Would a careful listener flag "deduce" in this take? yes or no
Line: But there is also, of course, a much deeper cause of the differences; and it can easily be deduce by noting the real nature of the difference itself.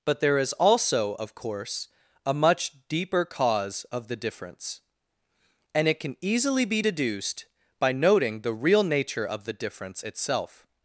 yes